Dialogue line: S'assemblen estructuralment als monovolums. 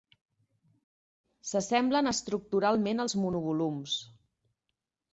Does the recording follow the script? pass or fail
pass